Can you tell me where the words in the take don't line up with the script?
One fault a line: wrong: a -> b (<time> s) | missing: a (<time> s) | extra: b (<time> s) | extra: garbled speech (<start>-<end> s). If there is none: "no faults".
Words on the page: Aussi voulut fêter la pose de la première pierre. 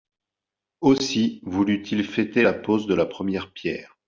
extra: il (1.9 s)